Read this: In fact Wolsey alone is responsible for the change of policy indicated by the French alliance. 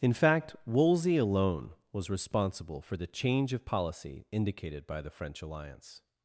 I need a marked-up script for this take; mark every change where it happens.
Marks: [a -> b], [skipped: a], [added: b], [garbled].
In fact Wolsey alone [is -> was] responsible for the change of policy indicated by the French alliance.